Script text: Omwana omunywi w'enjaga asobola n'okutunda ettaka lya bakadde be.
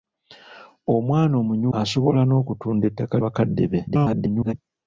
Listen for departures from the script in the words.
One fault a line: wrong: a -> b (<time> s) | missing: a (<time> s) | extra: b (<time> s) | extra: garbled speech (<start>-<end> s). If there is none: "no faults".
missing: w'enjaga (1.7 s)
missing: lya (3.2 s)
extra: garbled speech (3.9-4.5 s)